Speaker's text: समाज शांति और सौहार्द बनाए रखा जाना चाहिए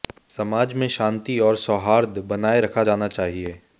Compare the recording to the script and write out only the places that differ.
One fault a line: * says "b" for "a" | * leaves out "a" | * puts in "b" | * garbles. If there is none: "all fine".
* puts in "में"